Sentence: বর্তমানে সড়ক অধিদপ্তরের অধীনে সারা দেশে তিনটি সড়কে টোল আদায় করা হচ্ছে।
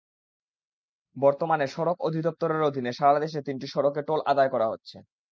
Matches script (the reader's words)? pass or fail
pass